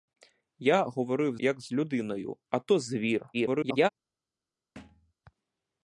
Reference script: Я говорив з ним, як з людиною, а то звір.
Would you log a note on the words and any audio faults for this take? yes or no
yes